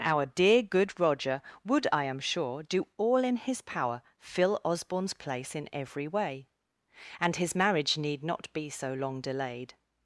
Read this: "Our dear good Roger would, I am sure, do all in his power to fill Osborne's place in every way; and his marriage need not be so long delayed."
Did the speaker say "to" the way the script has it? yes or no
no